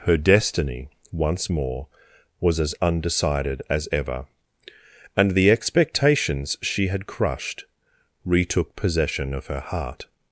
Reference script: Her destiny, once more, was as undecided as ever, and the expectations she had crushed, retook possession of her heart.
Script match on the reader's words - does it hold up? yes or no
yes